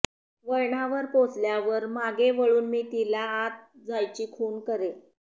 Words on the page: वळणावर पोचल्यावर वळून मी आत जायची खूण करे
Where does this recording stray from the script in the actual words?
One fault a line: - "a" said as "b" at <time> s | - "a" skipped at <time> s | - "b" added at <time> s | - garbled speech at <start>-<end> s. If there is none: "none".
- "मागे" added at 1.9 s
- "तिला" added at 2.9 s